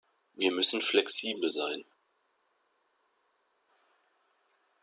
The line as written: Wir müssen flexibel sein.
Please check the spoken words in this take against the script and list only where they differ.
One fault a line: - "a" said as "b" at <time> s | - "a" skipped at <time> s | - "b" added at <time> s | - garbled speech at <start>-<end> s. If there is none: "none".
none